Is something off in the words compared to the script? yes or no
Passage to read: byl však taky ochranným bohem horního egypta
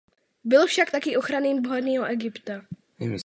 yes